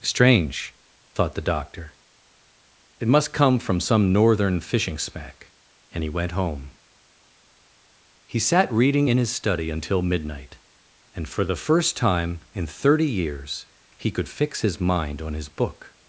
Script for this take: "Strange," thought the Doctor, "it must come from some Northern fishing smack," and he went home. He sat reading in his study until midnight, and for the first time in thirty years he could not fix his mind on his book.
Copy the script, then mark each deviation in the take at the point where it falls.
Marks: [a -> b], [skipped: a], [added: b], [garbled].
"Strange," thought the Doctor, "it must come from some Northern fishing smack," and he went home. He sat reading in his study until midnight, and for the first time in thirty years he could [skipped: not] fix his mind on his book.